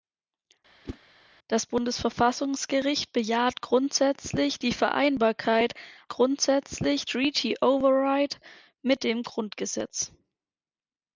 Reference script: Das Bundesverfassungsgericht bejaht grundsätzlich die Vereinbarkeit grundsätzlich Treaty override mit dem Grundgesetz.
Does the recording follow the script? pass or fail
pass